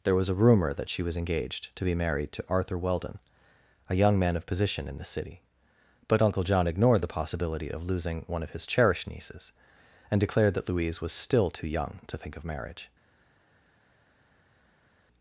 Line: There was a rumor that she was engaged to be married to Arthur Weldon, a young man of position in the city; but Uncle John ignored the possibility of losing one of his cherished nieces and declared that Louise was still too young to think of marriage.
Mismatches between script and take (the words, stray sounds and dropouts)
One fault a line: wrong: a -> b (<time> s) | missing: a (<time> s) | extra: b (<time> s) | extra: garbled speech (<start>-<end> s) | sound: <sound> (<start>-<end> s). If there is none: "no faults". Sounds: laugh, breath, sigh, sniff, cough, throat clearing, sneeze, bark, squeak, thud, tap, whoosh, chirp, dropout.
no faults